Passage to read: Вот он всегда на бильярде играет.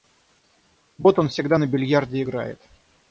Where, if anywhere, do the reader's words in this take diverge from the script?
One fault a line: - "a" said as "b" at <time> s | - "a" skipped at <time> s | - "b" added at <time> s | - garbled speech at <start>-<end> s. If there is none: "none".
none